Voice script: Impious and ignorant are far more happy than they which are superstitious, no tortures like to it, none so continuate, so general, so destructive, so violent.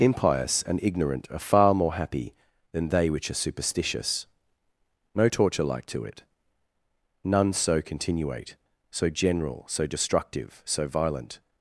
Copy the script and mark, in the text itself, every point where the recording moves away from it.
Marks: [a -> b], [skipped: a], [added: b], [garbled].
Impious and ignorant are far more happy than they which are superstitious, no [tortures -> torture] like to it, none so continuate, so general, so destructive, so violent.